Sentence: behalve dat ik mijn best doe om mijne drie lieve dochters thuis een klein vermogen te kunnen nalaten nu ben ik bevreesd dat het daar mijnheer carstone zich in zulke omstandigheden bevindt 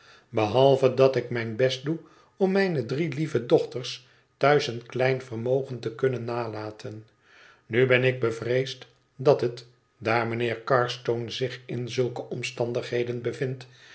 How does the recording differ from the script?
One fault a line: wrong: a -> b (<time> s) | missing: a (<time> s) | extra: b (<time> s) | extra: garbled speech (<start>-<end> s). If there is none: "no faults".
no faults